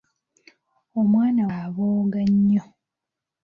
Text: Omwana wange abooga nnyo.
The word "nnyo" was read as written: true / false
true